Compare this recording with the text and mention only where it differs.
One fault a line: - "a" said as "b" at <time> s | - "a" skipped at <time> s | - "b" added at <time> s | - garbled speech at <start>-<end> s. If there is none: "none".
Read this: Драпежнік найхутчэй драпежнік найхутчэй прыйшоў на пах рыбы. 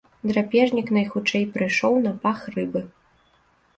- "драпежнік найхутчэй" skipped at 1.4 s